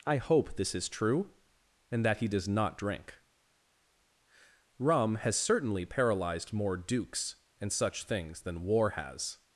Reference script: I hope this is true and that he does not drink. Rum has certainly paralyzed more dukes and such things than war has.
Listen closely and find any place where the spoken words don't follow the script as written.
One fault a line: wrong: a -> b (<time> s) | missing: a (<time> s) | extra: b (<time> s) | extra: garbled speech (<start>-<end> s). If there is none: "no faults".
no faults